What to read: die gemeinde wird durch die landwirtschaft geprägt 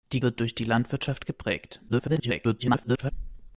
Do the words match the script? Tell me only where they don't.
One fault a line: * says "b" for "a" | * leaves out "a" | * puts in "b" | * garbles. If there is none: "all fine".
* leaves out "gemeinde"
* garbles